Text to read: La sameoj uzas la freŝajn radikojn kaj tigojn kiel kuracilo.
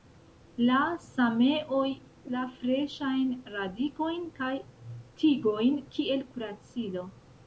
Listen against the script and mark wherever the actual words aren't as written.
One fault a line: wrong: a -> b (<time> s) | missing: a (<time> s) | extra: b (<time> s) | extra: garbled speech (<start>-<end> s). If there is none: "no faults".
missing: uzas (1.9 s)